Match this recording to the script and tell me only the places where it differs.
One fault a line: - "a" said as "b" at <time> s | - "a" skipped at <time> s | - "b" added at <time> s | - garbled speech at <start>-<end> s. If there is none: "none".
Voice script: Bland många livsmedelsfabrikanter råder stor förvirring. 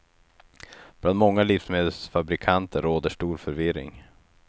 none